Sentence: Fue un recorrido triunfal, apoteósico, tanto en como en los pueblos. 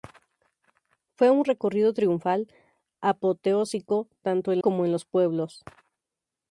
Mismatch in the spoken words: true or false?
false